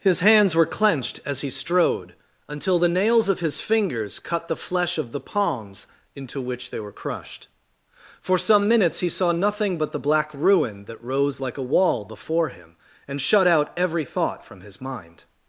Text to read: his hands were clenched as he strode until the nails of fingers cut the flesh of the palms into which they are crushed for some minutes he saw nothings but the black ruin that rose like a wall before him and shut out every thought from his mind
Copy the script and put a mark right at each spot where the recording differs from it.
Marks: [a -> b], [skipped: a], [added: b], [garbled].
his hands were clenched as he strode until the nails of [added: his] fingers cut the flesh of the palms into which they [are -> were] crushed for some minutes he saw [nothings -> nothing] but the black ruin that rose like a wall before him and shut out every thought from his mind